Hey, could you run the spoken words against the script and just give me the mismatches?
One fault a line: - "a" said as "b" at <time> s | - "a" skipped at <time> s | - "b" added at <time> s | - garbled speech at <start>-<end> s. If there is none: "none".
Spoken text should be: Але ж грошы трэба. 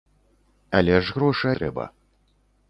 none